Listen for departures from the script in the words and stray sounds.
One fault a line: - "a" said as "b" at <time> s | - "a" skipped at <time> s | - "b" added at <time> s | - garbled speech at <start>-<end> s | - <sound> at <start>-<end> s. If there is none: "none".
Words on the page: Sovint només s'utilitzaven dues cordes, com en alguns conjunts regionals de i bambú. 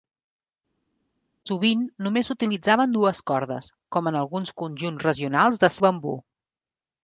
none